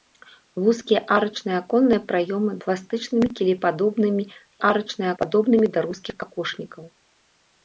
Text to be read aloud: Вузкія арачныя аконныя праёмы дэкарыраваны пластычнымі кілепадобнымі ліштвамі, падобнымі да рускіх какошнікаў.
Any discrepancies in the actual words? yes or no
yes